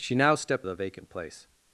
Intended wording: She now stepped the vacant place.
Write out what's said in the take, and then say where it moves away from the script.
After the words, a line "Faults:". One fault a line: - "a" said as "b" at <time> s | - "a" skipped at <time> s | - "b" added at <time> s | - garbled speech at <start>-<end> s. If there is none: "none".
She now stepped the vacant place.
Faults:
none